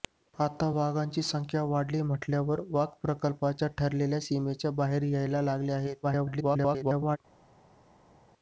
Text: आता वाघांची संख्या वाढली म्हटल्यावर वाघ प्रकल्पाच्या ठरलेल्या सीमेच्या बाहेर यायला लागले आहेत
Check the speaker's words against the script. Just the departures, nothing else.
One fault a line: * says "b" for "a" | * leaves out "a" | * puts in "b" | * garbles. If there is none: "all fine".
* garbles